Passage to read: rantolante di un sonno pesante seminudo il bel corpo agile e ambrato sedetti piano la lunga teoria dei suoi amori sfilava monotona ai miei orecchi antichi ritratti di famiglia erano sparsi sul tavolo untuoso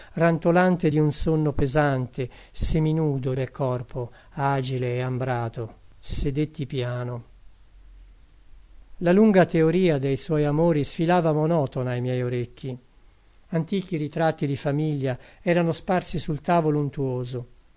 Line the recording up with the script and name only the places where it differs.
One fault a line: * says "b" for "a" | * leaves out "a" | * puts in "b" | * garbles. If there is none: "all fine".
* leaves out "il"